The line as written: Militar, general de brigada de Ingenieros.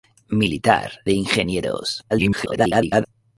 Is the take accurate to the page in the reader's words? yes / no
no